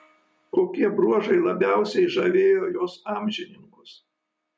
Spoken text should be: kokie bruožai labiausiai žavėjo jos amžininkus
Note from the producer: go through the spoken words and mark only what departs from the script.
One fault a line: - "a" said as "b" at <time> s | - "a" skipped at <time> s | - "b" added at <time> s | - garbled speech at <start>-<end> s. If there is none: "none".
none